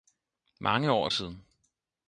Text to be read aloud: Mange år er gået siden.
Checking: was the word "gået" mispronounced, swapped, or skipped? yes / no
yes